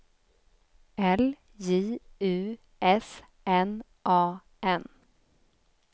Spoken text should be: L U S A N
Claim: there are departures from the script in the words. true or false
true